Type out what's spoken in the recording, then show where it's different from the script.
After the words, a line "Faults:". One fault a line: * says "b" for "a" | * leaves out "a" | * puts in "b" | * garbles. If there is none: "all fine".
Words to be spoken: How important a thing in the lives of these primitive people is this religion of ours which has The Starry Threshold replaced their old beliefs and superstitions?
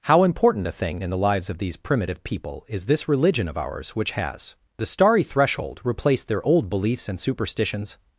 How important a thing in the lives of these primitive people is this religion of ours which has The Starry Threshold replaced their old beliefs and superstitions?
Faults:
all fine